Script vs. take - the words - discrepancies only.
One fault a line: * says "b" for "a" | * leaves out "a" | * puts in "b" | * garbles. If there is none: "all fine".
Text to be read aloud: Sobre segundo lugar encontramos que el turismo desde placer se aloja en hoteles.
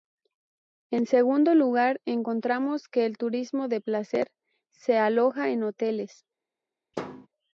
* says "En" for "Sobre"
* says "de" for "desde"